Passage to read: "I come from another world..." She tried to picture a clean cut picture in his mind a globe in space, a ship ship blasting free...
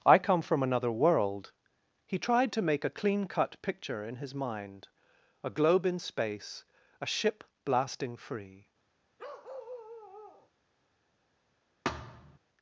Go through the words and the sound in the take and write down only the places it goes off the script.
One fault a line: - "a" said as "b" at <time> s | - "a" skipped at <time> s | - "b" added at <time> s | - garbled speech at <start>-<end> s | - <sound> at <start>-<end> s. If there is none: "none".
- "She" said as "He" at 2.1 s
- "picture" said as "make" at 2.6 s
- "ship" skipped at 7.4 s
- bark at 9.2-10.5 s
- thud at 11.8-12.4 s